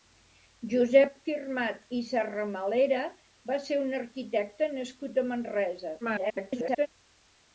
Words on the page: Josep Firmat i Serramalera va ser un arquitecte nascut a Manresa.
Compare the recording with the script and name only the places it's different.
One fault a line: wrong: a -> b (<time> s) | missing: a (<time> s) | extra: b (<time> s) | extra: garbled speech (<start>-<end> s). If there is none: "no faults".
extra: garbled speech (6.0-6.9 s)